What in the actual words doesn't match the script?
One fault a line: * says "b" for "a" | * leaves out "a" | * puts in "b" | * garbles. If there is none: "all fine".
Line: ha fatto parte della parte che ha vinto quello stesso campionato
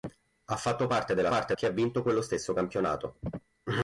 all fine